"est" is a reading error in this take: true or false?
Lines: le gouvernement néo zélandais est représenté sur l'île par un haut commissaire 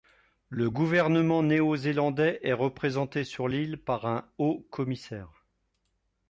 false